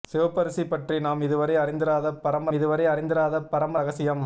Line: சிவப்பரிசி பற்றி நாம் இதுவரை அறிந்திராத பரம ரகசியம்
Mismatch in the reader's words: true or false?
true